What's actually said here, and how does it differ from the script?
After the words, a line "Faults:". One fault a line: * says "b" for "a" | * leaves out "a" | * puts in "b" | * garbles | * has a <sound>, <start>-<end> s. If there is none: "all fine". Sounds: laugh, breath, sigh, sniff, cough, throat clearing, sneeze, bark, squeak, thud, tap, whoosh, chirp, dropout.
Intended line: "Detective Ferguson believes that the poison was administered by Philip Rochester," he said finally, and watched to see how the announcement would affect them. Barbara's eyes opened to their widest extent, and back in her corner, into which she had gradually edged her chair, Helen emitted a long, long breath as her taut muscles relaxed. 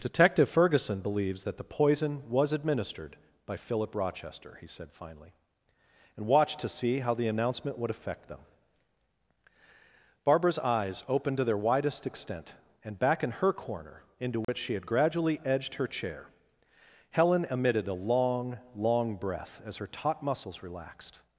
"Detective Ferguson believes that the poison was administered by Philip Rochester," he said finally, and watched to see how the announcement would affect them. Barbara's eyes opened to their widest extent, and back in her corner, into which she had gradually edged her chair, Helen emitted a long, long breath as her taut muscles relaxed.
Faults:
* has a dropout, 14.4-14.5 s